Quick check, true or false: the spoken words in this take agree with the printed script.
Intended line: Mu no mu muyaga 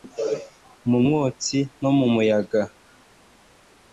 false